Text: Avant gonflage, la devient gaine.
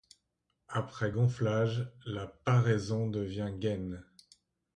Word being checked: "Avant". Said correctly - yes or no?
no